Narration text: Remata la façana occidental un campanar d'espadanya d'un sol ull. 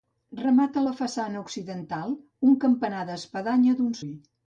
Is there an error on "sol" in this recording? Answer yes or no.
yes